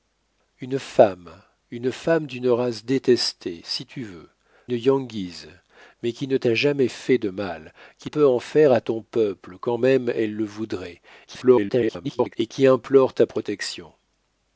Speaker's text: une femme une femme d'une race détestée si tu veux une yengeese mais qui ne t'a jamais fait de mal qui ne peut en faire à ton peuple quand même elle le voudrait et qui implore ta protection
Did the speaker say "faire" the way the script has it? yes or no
yes